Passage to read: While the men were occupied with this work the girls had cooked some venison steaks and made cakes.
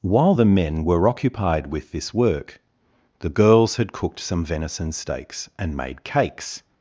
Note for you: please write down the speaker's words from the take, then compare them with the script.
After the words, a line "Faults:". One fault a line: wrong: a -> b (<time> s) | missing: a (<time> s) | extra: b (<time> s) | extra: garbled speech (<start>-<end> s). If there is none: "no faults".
While the men were occupied with this work the girls had cooked some venison steaks and made cakes.
Faults:
no faults